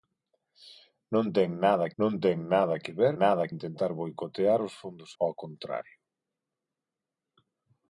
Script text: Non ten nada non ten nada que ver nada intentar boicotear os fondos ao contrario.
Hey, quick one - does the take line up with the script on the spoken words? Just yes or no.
yes